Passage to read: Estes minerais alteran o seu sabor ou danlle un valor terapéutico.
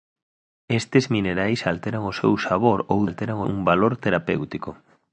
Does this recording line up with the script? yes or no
no